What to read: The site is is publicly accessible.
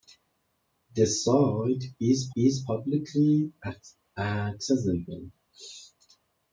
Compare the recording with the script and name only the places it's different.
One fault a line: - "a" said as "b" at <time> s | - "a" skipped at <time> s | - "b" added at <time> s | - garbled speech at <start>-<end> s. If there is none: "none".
none